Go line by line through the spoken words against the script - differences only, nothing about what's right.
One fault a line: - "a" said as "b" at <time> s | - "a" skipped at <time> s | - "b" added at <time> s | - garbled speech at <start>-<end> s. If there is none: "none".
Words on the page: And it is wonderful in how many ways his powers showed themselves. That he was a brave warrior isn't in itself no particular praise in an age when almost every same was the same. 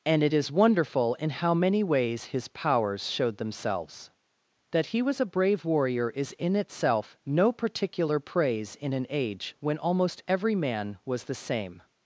- "isn't" said as "is" at 6.1 s
- "same" said as "man" at 10.6 s